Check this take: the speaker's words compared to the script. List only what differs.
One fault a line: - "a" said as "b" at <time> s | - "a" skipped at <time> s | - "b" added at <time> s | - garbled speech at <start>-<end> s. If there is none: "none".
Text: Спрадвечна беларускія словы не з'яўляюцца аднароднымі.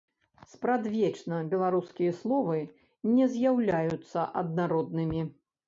none